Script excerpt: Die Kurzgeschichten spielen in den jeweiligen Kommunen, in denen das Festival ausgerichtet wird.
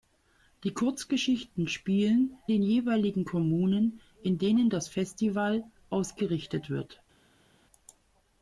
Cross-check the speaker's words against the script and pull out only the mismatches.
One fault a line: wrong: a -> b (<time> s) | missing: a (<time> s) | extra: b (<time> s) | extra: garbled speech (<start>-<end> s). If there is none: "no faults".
missing: in (2.4 s)